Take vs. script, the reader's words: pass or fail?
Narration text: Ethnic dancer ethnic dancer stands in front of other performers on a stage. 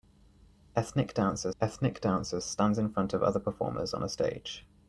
pass